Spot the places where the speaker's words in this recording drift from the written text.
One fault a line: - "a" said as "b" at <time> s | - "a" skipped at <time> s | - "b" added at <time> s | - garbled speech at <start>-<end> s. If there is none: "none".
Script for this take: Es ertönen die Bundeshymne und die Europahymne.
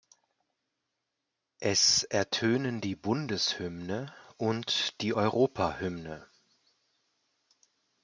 none